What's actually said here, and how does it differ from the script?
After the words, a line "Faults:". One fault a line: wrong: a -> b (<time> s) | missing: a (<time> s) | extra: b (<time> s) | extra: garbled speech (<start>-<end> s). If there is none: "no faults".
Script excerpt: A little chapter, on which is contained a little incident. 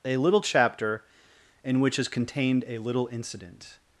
A little chapter, in which is contained a little incident.
Faults:
wrong: on -> in (1.6 s)